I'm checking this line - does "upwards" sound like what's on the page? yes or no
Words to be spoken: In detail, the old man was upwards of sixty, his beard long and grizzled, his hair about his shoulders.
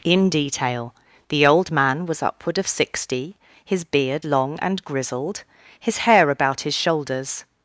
no